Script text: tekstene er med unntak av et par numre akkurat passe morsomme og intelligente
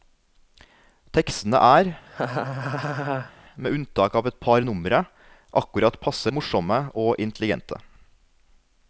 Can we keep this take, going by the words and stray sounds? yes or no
no